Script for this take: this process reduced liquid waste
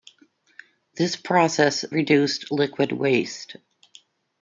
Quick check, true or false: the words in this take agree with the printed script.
true